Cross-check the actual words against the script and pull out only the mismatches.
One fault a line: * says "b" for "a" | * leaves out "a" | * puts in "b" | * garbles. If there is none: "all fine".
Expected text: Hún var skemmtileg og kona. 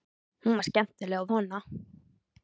all fine